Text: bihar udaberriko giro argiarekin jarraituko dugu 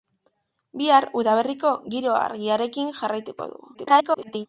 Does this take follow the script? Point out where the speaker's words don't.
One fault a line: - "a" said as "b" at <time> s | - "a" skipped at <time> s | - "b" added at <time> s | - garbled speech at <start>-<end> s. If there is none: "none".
- garbled speech at 3.7-4.5 s